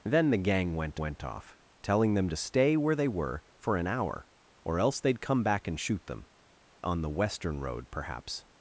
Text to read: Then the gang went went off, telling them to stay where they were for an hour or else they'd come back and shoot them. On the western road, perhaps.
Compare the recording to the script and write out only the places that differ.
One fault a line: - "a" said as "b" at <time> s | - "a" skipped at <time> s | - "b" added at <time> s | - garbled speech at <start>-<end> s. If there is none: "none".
none